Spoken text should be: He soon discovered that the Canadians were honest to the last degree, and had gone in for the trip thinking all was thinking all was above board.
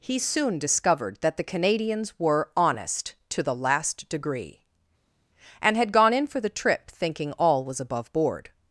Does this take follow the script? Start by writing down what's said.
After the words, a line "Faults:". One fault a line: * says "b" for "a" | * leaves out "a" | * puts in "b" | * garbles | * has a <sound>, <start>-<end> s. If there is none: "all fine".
He soon discovered that the Canadians were honest to the last degree, and had gone in for the trip thinking all was above board.
Faults:
* leaves out "thinking all was"